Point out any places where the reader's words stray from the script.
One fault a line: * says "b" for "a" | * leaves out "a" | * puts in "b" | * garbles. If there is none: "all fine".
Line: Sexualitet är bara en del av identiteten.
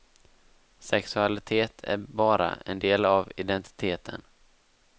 all fine